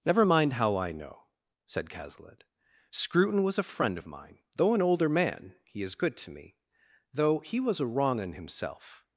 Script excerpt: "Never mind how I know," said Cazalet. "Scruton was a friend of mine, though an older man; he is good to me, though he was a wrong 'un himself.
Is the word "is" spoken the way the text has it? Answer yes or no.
yes